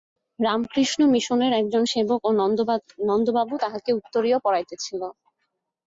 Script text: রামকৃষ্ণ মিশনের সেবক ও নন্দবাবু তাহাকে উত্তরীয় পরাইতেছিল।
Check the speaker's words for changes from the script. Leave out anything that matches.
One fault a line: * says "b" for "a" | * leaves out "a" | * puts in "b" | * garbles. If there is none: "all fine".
* puts in "একজন"